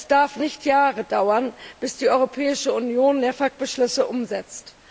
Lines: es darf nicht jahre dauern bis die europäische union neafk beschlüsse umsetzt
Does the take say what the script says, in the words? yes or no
yes